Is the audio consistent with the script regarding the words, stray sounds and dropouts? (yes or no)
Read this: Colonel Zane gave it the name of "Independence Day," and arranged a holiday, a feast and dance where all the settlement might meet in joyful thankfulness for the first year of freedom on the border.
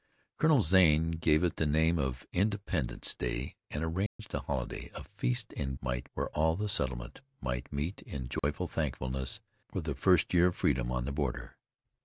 no